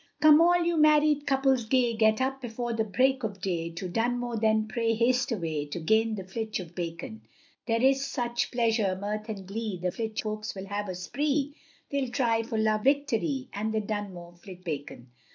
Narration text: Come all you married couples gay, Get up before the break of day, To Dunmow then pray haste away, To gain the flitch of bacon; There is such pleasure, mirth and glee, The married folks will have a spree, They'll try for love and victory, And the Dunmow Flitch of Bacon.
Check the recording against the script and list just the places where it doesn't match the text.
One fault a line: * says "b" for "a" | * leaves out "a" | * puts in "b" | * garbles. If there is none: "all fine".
* says "flitch" for "married"
* leaves out "and"
* leaves out "of"